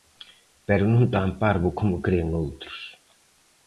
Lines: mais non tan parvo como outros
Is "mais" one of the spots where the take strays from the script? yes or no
yes